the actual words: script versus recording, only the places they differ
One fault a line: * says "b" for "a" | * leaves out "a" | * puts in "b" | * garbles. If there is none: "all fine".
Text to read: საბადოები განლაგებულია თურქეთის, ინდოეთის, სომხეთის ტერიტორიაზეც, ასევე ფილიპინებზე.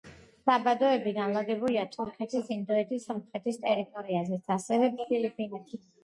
all fine